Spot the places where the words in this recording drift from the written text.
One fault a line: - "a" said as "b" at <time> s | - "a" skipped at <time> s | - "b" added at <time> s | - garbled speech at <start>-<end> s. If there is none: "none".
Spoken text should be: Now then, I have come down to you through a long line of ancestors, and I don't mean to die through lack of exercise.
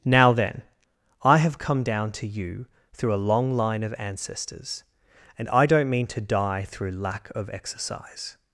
none